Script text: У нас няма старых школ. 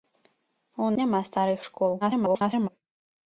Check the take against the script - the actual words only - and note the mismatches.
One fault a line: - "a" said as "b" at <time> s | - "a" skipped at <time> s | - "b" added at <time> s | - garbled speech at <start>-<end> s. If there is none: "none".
- "нас" skipped at 0.9 s
- garbled speech at 2.0-2.7 s